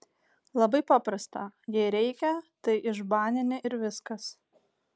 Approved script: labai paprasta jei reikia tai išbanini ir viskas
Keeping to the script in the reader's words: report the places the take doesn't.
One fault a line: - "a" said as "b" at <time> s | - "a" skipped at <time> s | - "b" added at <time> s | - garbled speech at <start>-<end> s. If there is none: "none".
none